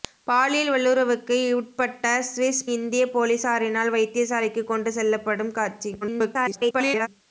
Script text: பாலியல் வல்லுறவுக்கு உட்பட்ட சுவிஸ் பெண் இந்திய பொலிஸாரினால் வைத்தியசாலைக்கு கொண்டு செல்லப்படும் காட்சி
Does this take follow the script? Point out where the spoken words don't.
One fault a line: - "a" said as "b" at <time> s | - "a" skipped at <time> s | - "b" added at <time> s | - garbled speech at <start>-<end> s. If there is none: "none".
- "பெண்" skipped at 2.6 s
- garbled speech at 6.0-7.1 s